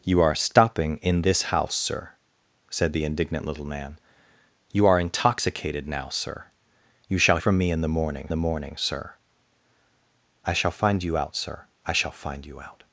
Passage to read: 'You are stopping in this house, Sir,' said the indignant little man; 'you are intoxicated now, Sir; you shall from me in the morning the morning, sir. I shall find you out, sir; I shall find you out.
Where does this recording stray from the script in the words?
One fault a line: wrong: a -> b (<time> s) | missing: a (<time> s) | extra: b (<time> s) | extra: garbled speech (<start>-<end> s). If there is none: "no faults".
no faults